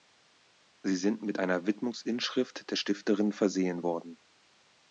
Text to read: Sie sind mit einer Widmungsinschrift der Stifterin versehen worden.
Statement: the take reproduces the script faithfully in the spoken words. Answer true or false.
true